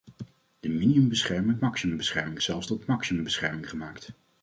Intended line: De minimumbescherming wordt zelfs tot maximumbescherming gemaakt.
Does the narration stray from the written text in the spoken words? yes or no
yes